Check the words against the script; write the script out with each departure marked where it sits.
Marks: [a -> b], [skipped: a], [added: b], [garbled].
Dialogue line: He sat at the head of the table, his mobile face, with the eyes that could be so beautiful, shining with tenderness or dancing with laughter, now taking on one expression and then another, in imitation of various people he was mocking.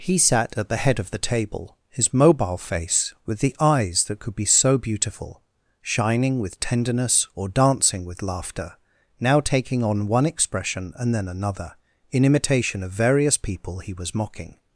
He sat at the head of the table, his mobile face, with the eyes that could be so beautiful, shining with tenderness or dancing with laughter, now taking on one expression and then another, in imitation of various people he was mocking.